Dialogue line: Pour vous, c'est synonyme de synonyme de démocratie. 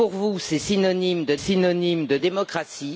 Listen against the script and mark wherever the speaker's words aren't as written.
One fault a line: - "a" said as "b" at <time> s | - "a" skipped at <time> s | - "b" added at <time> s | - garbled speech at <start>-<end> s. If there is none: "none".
none